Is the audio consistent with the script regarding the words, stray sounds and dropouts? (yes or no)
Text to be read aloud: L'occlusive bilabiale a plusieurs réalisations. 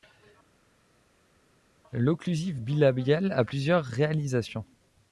yes